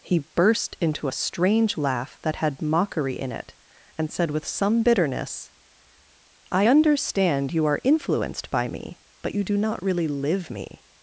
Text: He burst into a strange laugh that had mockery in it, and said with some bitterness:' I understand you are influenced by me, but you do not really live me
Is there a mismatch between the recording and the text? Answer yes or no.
no